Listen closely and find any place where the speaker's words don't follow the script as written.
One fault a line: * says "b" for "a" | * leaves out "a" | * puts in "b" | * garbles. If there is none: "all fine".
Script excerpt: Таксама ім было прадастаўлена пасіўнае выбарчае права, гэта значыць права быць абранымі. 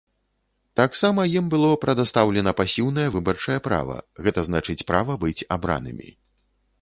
all fine